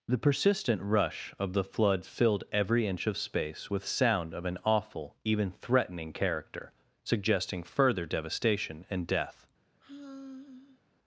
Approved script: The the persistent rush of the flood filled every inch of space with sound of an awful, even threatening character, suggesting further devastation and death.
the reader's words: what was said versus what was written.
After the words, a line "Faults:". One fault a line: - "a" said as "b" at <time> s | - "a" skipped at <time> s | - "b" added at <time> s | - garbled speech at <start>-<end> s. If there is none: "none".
The persistent rush of the flood filled every inch of space with sound of an awful, even threatening character, suggesting further devastation and death.
Faults:
- "the" skipped at 0.2 s